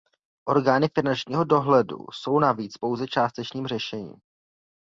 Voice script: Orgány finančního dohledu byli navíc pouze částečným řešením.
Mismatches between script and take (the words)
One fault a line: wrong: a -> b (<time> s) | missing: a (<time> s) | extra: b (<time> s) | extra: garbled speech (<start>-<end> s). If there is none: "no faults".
wrong: byli -> jsou (2.1 s)